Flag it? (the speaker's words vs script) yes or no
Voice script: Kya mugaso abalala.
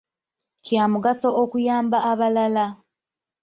yes